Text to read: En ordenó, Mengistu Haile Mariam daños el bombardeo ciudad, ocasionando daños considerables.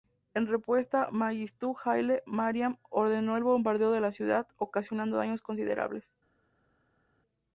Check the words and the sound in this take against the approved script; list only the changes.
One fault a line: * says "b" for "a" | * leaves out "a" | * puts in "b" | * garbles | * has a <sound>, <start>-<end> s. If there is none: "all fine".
* says "respuesta" for "ordenó"
* says "ordenó" for "daños"
* puts in "de la"